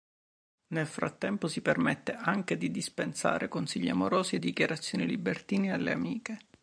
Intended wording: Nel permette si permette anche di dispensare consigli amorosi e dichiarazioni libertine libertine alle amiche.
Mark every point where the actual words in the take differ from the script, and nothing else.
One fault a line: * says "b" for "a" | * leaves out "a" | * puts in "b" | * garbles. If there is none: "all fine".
* says "frattempo" for "permette"
* leaves out "libertine"